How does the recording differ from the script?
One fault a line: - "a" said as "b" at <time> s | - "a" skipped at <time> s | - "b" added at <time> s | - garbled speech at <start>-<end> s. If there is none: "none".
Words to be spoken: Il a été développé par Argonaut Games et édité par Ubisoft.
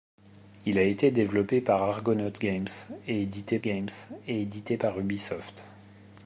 - "Games et édité" added at 3.6 s